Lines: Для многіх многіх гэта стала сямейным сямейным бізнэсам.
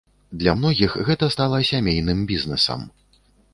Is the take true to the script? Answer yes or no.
no